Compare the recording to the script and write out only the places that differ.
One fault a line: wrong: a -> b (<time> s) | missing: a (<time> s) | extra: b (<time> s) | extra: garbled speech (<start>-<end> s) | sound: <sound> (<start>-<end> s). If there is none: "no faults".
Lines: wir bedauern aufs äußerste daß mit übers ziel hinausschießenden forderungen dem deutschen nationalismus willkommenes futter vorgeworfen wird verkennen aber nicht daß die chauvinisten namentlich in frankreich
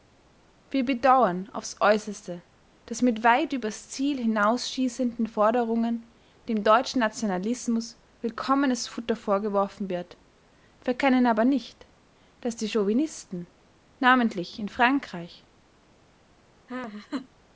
extra: weit (3.2 s)
sound: laugh (16.7-17.3 s)